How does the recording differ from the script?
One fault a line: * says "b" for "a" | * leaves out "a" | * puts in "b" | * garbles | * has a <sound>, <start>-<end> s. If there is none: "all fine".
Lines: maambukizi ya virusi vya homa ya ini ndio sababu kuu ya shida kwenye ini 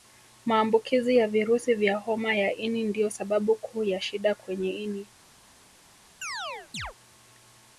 * has a chirp, 6.2-6.9 s